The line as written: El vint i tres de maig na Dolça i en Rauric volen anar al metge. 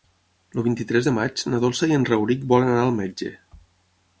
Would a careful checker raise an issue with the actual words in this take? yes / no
no